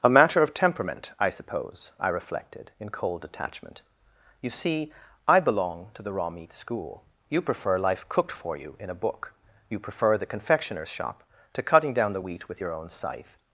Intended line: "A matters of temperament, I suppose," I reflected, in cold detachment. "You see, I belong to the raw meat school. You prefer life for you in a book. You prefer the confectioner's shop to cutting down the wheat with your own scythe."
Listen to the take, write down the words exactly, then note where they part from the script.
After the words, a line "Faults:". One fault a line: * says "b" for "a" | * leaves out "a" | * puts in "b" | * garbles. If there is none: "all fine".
"A matter of temperament, I suppose," I reflected, in cold detachment. "You see, I belong to the raw meat school. You prefer life cooked for you in a book. You prefer the confectioner's shop to cutting down the wheat with your own scythe."
Faults:
* says "matter" for "matters"
* puts in "cooked"